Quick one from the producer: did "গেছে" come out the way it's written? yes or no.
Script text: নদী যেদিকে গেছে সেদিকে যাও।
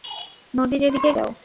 no